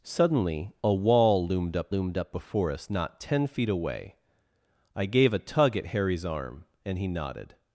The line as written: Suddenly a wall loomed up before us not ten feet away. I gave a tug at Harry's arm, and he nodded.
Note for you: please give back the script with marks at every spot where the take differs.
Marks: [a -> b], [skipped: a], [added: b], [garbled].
Suddenly a wall loomed up [added: loomed up] before us not ten feet away. I gave a tug at Harry's arm, and he nodded.